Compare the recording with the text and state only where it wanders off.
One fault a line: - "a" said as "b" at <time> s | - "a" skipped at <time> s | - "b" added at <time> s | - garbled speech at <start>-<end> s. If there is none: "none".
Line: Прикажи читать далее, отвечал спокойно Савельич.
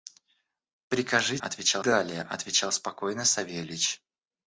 - "читать" said as "отвечал" at 1.3 s